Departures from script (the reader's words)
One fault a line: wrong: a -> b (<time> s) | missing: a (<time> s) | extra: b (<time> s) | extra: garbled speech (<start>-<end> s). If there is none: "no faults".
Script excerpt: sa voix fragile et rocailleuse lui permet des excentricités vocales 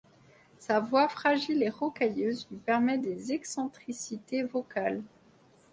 no faults